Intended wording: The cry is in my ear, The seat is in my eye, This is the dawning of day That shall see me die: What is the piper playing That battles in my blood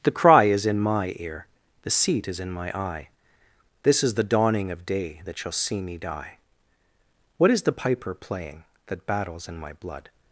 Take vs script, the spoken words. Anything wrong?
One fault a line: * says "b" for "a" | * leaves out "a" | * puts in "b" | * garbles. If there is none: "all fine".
all fine